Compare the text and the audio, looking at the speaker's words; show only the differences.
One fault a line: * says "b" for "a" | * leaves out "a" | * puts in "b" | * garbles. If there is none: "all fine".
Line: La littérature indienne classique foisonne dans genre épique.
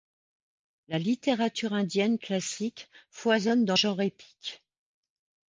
all fine